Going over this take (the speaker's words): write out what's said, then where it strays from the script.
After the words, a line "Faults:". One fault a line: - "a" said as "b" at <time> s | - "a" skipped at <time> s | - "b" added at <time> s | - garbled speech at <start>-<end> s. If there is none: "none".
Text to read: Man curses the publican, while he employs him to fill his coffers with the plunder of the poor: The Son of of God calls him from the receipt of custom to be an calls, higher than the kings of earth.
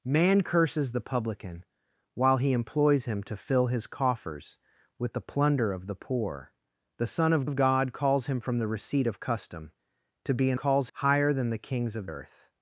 Man curses the publican, while he employs him to fill his coffers with the plunder of the poor: The Son of of God calls him from the receipt of custom to be an calls, higher than the kings of earth.
Faults:
none